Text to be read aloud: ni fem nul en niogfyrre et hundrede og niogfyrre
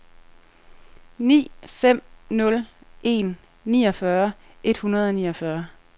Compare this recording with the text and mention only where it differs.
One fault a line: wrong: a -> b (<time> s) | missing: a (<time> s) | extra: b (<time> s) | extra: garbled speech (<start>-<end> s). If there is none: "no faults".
no faults